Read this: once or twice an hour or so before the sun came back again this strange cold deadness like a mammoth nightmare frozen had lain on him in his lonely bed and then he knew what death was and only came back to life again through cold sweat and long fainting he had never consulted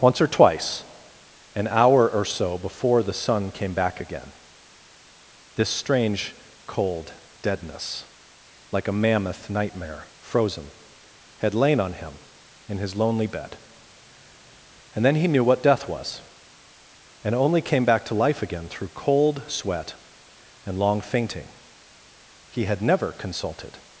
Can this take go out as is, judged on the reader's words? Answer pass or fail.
pass